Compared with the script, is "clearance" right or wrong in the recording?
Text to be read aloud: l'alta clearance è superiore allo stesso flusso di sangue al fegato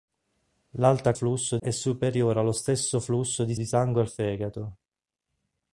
wrong